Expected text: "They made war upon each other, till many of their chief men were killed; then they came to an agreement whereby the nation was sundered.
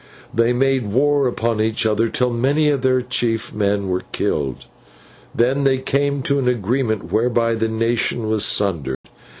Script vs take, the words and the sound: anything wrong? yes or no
yes